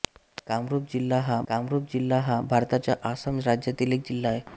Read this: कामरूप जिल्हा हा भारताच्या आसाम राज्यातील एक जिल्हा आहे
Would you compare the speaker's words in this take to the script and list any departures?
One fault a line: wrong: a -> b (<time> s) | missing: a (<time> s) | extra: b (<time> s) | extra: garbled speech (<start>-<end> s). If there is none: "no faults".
extra: कामरूप जिल्हा हा (1.5 s)